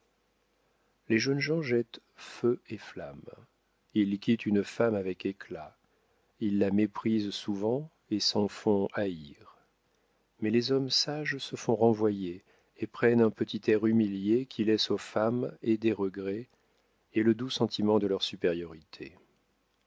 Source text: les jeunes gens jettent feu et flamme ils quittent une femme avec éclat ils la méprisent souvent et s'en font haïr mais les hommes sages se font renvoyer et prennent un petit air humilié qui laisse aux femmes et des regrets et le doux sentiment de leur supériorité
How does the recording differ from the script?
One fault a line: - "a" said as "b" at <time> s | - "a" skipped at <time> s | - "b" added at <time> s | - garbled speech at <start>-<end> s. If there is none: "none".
none